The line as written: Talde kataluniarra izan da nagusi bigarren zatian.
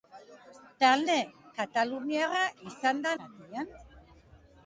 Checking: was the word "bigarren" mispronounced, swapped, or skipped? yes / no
yes